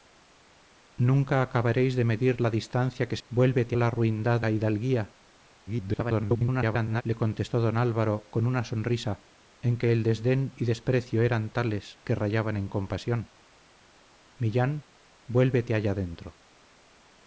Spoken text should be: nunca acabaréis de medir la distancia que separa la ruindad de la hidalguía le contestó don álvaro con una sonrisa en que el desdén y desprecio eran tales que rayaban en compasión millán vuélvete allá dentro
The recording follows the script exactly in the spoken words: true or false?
false